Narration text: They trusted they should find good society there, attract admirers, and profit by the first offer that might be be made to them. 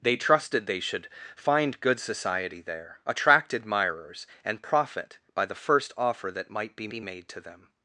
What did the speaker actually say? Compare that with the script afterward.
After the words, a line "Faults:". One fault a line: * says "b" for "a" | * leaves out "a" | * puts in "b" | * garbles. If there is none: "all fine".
They trusted they should find good society there, attract admirers, and profit by the first offer that might be be made to them.
Faults:
all fine